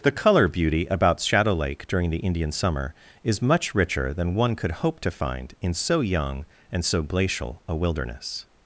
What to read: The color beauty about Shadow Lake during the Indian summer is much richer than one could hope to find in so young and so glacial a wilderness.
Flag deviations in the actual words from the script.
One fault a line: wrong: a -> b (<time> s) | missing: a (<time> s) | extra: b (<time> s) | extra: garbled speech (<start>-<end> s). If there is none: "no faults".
no faults